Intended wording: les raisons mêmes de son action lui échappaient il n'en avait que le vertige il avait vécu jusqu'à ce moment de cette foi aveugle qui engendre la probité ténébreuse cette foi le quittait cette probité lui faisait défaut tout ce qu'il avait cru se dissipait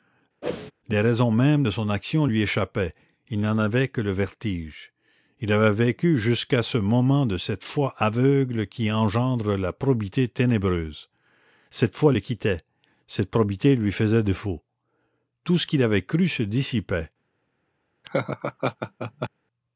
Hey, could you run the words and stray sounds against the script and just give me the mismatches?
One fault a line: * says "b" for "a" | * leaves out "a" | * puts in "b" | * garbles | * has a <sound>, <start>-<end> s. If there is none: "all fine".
* has a whoosh, 0.4-0.7 s
* has a laugh, 18.0-19.3 s